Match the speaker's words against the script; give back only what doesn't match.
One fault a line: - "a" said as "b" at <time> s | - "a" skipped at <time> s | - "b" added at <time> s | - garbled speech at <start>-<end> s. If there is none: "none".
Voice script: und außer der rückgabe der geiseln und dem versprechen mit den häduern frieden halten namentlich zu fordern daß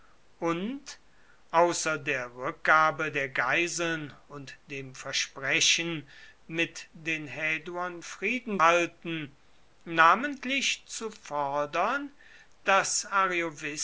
none